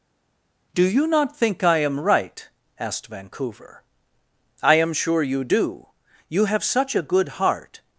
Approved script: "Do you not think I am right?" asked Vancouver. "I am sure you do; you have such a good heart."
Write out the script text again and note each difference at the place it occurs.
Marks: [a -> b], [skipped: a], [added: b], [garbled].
"Do you not think I am right?" asked Vancouver. "I am sure you do; you have such a good heart."